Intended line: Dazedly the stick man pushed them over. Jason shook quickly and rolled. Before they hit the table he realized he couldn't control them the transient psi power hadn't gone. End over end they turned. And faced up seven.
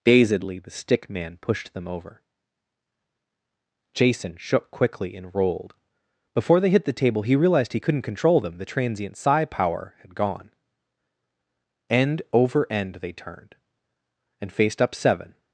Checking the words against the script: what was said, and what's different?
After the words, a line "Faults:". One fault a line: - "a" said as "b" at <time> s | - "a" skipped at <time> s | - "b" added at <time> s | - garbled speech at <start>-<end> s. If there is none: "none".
Dazedly the stick man pushed them over. Jason shook quickly and rolled. Before they hit the table he realized he couldn't control them the transient psi power had gone. End over end they turned. And faced up seven.
Faults:
- "hadn't" said as "had" at 10.0 s